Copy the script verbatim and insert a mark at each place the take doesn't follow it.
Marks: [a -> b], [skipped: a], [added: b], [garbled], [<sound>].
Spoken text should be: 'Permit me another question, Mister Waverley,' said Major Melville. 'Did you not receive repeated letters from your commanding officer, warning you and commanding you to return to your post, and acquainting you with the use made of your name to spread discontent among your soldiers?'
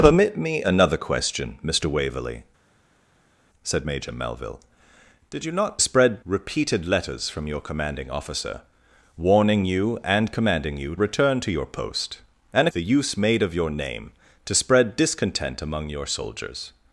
'Permit me another question, Mister Waverley,' said Major Melville. 'Did you not [receive -> spread] repeated letters from your commanding officer, warning you and commanding you [skipped: to] return to your post, and [skipped: acquainting you with] the use made of your name to spread discontent among your soldiers?'